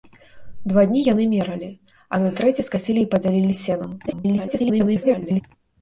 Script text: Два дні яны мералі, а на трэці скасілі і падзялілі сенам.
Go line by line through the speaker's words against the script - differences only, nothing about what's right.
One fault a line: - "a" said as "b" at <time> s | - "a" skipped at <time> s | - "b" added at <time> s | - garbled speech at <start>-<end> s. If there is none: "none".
- garbled speech at 4.1-5.4 s